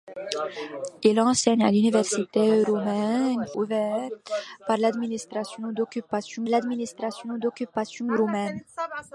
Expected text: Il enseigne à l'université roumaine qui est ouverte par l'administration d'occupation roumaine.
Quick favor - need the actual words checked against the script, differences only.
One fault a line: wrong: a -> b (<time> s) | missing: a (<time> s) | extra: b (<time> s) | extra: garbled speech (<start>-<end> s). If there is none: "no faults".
wrong: qui est ouverte par -> ouverte par l'administration d'occupation (3.5 s)